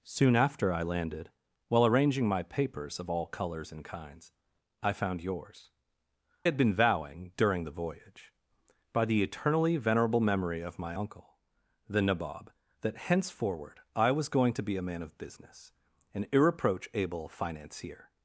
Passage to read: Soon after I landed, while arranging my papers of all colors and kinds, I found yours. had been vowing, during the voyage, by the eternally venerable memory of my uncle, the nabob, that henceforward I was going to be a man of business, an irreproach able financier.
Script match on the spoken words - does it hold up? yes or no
yes